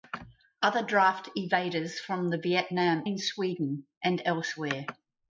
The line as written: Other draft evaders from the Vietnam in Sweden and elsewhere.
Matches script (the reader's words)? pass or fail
pass